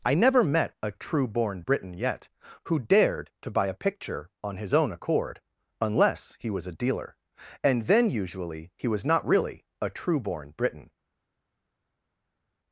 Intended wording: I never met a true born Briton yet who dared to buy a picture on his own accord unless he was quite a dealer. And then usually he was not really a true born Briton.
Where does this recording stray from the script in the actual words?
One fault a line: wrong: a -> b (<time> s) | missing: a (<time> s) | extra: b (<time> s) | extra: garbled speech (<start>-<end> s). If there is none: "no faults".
missing: quite (6.7 s)